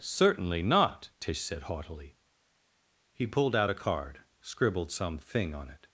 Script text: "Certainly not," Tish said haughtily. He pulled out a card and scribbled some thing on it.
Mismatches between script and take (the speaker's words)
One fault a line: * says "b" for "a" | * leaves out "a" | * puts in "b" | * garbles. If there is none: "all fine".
* leaves out "and"